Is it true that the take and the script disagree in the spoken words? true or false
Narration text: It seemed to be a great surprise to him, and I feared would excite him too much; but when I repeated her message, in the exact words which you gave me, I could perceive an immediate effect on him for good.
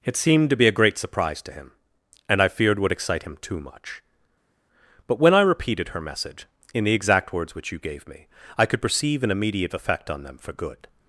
true